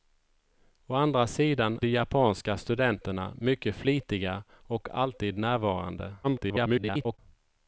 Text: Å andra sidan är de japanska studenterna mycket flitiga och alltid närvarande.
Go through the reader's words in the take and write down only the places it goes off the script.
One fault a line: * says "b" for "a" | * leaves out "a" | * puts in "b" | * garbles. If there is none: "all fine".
* leaves out "är"
* garbles